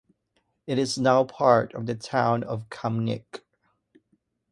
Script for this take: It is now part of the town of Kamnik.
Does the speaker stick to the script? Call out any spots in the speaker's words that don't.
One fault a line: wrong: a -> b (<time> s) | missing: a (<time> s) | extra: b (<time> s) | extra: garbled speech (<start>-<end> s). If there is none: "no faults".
no faults